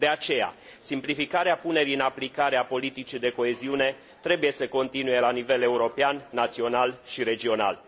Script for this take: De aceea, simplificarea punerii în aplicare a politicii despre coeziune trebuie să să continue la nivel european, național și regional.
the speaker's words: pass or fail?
fail